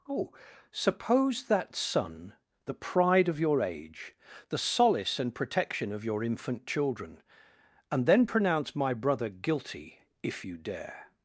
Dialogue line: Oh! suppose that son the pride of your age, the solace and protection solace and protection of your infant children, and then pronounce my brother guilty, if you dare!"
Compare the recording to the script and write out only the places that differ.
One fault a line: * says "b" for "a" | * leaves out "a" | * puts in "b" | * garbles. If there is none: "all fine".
* leaves out "solace and protection"